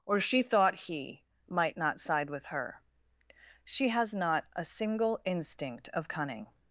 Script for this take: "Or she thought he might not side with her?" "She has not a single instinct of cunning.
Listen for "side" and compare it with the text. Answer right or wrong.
right